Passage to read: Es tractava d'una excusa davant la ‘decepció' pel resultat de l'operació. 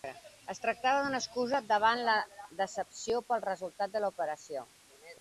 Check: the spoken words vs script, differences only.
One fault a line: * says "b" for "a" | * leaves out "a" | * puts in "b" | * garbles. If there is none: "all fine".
all fine